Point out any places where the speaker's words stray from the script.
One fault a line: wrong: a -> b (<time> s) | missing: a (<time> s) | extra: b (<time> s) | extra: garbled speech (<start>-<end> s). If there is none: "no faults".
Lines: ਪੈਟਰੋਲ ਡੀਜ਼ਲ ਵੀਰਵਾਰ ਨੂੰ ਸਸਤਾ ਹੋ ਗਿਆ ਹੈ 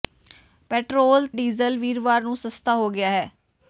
no faults